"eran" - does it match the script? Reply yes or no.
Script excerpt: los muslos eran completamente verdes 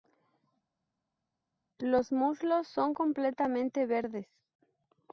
no